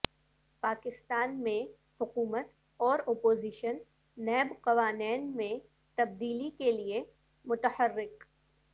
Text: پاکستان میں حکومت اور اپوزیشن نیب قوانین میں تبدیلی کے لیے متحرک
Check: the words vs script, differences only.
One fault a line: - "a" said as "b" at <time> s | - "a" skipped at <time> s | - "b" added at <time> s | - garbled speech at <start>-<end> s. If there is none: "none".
none